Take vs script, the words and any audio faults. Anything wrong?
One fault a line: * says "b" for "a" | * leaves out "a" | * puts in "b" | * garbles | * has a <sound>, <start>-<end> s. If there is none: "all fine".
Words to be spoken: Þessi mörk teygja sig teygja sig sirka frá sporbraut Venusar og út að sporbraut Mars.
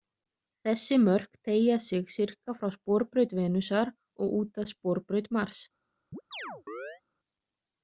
* leaves out "teygja sig"
* has a chirp, 6.1-7.0 s